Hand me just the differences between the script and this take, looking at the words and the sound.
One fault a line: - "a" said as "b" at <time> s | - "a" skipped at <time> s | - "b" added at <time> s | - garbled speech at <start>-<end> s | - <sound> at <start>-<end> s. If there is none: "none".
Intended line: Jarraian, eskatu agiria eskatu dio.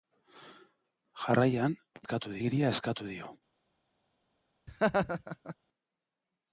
- laugh at 4.7-5.6 s